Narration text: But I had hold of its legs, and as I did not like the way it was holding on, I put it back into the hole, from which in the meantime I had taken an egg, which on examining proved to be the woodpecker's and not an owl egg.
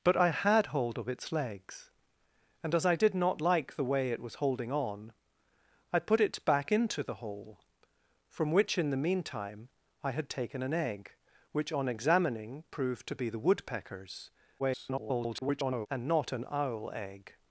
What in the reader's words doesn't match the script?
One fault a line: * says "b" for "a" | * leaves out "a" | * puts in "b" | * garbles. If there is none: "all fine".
* garbles